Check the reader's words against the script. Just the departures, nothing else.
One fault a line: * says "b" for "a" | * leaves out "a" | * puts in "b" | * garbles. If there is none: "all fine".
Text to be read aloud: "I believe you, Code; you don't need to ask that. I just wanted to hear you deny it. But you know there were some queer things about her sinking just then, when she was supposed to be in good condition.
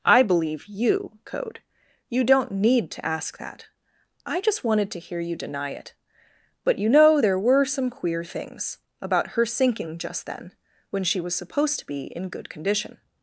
all fine